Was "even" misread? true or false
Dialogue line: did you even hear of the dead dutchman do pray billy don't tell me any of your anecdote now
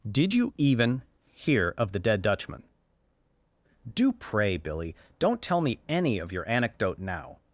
false